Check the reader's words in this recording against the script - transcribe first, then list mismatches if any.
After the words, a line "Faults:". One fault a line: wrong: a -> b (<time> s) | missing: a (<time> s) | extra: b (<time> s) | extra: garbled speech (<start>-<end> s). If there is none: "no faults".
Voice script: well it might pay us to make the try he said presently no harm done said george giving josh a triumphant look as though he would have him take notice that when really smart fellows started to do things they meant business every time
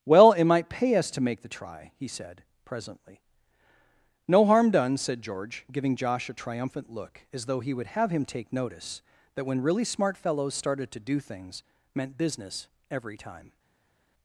well it might pay us to make the try he said presently no harm done said george giving josh a triumphant look as though he would have him take notice that when really smart fellows started to do things meant business every time
Faults:
missing: they (11.6 s)